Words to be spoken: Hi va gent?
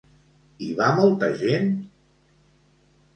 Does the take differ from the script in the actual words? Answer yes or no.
yes